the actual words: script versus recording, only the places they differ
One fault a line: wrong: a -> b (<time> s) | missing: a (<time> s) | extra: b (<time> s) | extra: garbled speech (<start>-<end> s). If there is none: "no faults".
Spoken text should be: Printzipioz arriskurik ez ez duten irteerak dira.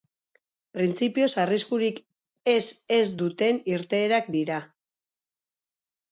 no faults